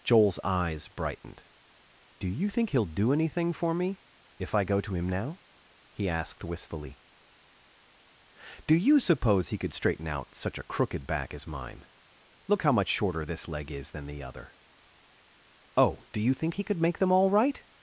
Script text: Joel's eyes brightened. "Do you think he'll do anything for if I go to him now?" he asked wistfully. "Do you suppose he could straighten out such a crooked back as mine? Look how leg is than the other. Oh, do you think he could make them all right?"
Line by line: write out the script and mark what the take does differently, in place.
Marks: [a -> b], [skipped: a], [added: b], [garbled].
Joel's eyes brightened. "Do you think he'll do anything for [added: me] if I go to him now?" he asked wistfully. "Do you suppose he could straighten out such a crooked back as mine? Look how [added: much shorter this] leg is than the other. Oh, do you think he could make them all right?"